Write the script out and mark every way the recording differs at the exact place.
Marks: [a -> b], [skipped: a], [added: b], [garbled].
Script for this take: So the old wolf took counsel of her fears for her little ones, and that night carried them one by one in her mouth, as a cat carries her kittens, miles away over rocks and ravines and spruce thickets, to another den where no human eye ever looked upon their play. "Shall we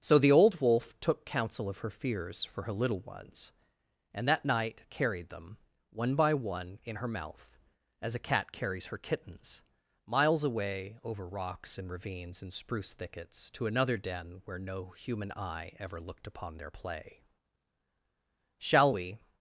So the old wolf took counsel of her fears for her little ones, and that night carried them one by one in her mouth, as a cat carries her kittens, miles away over rocks and ravines and spruce thickets, to another den where no human eye ever looked upon their play. "Shall we